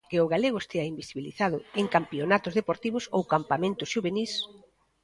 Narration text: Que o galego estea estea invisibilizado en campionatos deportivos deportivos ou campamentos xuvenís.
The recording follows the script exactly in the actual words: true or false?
false